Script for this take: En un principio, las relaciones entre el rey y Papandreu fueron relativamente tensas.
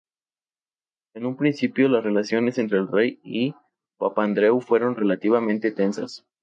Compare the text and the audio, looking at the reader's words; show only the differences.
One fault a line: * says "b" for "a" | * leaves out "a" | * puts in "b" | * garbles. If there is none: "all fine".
all fine